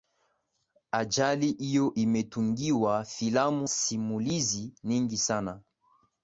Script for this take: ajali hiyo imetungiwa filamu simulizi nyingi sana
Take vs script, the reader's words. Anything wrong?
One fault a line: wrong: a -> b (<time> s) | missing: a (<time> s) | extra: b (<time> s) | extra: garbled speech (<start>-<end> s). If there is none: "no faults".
no faults